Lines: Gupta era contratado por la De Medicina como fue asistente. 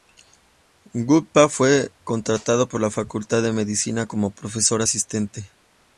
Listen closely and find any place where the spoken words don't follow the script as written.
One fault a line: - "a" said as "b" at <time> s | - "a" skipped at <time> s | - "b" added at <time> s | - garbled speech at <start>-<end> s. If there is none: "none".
- "era" said as "fue" at 1.5 s
- "Facultad" added at 2.9 s
- "fue" said as "profesor" at 4.4 s